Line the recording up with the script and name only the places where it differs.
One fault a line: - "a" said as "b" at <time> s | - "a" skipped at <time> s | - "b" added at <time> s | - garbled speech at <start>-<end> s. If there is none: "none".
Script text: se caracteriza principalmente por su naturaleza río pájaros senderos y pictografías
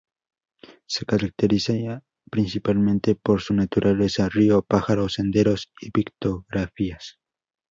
none